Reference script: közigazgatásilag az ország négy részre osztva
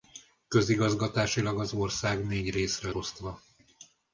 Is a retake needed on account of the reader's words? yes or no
no